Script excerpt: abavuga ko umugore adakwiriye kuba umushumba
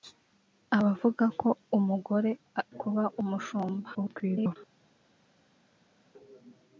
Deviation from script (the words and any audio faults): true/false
true